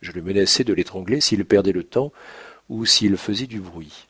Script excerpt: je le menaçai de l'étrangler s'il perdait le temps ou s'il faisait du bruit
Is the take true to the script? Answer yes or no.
yes